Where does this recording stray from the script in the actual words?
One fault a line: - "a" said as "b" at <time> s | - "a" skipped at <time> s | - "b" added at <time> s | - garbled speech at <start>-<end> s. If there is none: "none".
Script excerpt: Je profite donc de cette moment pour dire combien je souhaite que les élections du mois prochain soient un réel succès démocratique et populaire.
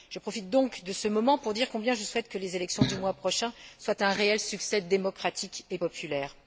- "cette" said as "ce" at 0.9 s